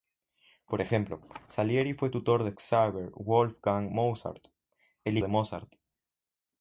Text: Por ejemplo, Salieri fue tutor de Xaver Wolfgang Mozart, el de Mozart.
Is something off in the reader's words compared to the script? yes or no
no